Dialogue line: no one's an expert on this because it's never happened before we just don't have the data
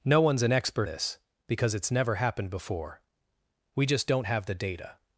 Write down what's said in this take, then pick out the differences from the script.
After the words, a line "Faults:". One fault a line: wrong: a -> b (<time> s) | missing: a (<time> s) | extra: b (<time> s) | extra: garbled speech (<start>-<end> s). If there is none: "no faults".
no one's an expert this because it's never happened before we just don't have the data
Faults:
missing: on (0.9 s)